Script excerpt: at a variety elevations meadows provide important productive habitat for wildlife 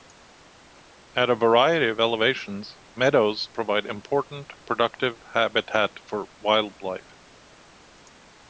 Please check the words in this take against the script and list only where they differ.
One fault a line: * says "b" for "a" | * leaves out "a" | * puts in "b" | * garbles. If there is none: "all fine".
* puts in "of"